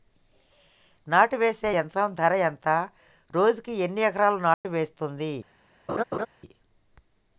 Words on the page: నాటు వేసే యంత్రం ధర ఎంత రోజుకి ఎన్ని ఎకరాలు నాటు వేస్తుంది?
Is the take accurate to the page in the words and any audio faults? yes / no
no